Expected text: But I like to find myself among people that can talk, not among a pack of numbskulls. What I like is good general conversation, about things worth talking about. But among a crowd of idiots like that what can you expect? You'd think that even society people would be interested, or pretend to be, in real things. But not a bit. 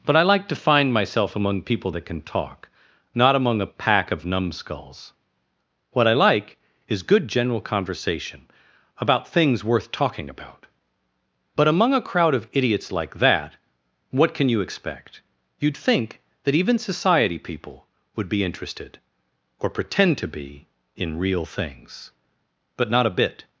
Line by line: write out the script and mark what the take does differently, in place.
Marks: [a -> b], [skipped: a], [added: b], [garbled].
But I like to find myself among people that can talk, not among a pack of numbskulls. What I like is good general conversation, about things worth talking about. But among a crowd of idiots like that what can you expect? You'd think that even society people would be interested, or pretend to be, in real things. But not a bit.